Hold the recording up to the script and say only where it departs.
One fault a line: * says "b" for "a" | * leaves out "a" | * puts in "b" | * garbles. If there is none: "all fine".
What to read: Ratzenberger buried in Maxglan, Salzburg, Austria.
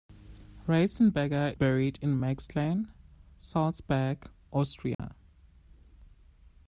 all fine